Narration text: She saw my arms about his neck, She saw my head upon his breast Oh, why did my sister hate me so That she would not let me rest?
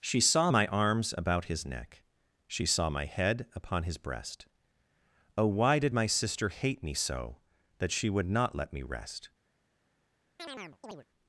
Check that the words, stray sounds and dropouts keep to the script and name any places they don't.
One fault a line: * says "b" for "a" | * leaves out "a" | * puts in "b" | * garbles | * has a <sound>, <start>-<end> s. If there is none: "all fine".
* has a chirp, 10.4-11.0 s